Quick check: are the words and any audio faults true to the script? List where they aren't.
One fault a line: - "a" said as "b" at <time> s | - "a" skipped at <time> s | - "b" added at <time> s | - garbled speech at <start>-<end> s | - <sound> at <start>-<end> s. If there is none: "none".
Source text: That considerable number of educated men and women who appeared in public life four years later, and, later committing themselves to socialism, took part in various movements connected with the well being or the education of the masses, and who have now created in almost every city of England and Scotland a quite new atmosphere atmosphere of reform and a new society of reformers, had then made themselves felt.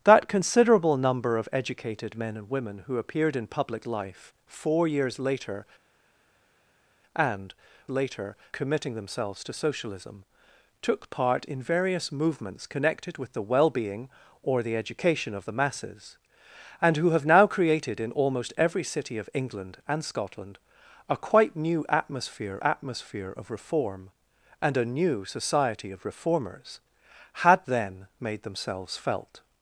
none